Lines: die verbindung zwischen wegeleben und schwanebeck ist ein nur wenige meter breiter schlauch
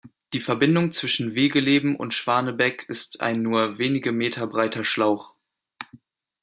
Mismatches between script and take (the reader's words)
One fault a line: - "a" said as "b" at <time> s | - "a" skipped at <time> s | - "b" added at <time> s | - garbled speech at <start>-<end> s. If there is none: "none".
none